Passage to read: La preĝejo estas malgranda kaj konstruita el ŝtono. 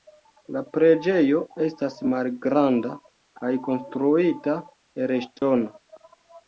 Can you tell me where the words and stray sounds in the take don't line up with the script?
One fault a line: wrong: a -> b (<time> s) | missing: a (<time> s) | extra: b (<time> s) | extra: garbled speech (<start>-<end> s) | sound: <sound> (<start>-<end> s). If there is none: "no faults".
sound: dropout (5.4-5.4 s)